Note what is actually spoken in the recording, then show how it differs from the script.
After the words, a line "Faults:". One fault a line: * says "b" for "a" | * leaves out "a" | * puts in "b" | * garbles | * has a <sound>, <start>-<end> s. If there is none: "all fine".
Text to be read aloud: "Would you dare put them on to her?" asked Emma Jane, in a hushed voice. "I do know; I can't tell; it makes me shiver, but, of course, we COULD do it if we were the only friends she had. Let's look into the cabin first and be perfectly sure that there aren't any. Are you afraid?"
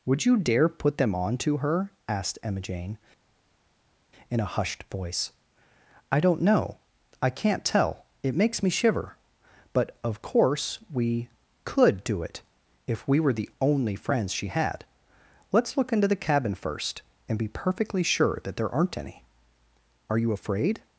"Would you dare put them on to her?" asked Emma Jane, in a hushed voice. "I don't know; I can't tell; it makes me shiver, but, of course, we COULD do it if we were the only friends she had. Let's look into the cabin first and be perfectly sure that there aren't any. Are you afraid?"
Faults:
* says "don't" for "do"